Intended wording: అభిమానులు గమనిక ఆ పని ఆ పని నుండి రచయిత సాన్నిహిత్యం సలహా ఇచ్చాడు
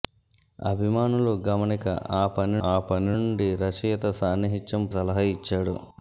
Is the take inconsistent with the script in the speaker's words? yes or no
no